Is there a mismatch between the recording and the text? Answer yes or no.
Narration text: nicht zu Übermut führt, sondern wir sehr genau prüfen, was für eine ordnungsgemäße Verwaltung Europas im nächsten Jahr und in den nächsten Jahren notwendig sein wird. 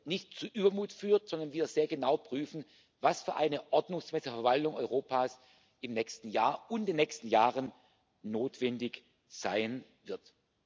no